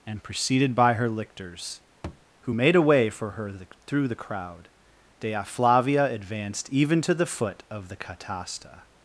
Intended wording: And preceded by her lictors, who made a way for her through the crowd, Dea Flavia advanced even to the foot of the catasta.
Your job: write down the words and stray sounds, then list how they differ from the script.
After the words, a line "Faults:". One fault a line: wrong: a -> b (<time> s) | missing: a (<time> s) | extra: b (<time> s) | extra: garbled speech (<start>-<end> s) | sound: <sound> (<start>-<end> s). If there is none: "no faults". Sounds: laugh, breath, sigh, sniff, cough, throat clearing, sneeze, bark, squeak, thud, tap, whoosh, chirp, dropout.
And preceded by her lictors, who made a way for her the through the crowd, Dea Flavia advanced even to the foot of the catasta.
Faults:
sound: thud (2.0-2.3 s)
extra: the (3.5 s)